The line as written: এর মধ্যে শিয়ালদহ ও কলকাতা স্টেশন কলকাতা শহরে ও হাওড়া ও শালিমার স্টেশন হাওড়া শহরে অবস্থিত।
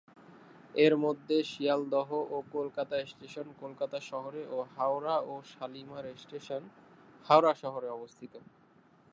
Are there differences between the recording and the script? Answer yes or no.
no